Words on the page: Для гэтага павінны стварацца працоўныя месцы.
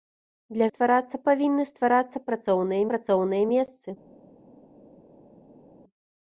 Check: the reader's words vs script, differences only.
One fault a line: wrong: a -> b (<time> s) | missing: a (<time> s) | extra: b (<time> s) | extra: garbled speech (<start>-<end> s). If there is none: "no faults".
wrong: гэтага -> стварацца (0.7 s)
extra: працоўныя (2.9 s)